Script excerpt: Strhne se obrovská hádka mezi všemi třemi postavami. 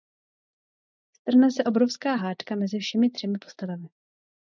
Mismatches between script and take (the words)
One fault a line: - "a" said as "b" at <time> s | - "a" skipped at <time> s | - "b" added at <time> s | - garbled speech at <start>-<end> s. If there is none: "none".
none